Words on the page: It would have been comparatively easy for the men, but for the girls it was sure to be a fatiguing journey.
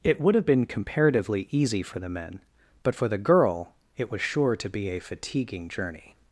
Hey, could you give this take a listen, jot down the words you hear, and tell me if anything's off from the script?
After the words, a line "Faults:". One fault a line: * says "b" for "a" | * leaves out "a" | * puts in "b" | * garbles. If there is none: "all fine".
It would have been comparatively easy for the men, but for the girl it was sure to be a fatiguing journey.
Faults:
* says "girl" for "girls"